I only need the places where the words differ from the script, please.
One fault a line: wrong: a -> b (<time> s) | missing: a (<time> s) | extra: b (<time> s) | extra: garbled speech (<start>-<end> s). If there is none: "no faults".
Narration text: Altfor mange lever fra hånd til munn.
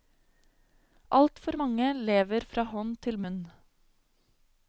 no faults